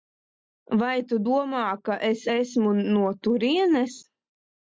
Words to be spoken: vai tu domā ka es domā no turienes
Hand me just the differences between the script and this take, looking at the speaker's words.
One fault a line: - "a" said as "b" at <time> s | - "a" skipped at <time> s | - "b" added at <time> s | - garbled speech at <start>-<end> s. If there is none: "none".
- "domā" said as "esmu" at 2.3 s